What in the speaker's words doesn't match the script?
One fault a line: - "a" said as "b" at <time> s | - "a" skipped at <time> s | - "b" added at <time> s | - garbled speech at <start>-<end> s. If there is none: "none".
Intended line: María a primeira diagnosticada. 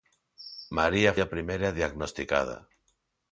none